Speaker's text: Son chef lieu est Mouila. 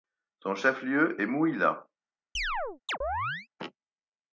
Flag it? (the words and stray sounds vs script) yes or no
yes